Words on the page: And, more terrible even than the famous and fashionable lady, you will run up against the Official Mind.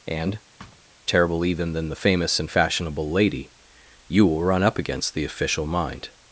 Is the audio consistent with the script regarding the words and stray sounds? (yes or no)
no